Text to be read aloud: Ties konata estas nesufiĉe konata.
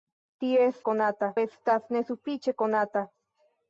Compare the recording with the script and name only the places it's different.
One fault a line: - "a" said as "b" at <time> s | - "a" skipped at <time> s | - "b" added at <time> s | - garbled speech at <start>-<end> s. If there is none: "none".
none